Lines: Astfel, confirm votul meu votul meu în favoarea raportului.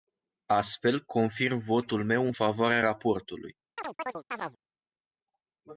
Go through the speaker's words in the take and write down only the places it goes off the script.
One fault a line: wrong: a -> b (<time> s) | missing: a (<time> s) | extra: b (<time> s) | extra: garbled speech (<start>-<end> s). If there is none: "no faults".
missing: votul meu (2.3 s)